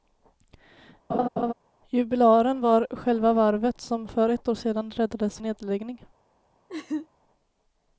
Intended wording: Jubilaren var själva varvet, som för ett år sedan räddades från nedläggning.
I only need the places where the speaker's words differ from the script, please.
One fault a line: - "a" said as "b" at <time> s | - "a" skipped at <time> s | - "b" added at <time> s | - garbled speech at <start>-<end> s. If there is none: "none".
- "från" skipped at 5.4 s